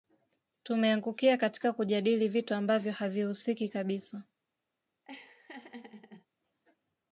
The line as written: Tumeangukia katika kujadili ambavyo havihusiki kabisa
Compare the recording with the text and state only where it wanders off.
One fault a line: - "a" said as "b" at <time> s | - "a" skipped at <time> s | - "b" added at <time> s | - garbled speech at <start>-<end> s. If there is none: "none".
- "vitu" added at 2.3 s